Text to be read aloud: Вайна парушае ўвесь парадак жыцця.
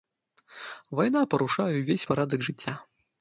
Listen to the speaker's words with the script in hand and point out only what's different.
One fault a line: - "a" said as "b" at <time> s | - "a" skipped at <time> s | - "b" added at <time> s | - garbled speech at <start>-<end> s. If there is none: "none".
none